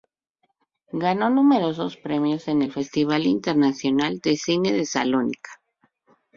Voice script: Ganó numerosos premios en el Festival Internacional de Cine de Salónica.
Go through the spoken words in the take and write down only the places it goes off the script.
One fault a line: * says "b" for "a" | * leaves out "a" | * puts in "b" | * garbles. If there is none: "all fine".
all fine